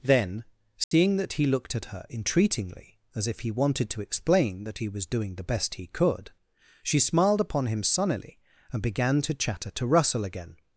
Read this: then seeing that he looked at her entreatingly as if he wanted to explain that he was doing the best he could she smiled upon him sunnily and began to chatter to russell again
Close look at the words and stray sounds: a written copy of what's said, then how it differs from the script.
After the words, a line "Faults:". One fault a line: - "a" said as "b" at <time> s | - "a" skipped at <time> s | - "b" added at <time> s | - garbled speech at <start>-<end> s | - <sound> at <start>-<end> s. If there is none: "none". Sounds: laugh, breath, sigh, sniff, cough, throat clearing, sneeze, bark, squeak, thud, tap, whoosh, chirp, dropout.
then seeing that he looked at her entreatingly as if he wanted to explain that he was doing the best he could she smiled upon him sunnily and began to chatter to russell again
Faults:
- dropout at 0.8-0.9 s